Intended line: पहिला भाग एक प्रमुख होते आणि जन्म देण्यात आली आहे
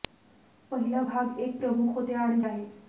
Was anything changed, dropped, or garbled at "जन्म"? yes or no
yes